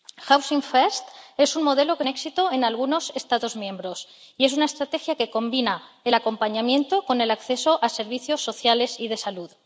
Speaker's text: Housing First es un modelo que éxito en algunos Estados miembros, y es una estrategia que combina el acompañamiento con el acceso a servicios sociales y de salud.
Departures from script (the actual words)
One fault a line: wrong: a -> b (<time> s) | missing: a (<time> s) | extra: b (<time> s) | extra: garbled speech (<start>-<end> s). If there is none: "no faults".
no faults